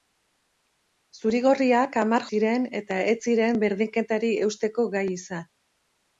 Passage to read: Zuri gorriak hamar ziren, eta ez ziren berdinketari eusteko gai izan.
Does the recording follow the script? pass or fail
pass